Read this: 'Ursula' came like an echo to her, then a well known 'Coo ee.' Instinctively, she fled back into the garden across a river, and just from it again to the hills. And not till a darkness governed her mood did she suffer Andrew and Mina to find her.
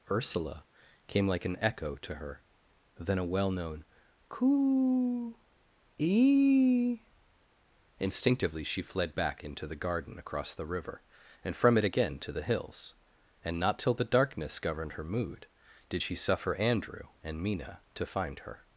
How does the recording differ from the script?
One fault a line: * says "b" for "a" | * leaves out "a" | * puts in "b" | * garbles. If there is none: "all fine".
* says "the" for "a"
* leaves out "just"
* says "the" for "a"